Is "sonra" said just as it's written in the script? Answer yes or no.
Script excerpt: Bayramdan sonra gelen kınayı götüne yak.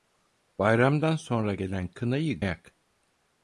yes